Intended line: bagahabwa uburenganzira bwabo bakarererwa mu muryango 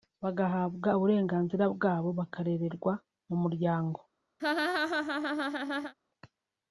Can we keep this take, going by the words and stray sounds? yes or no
no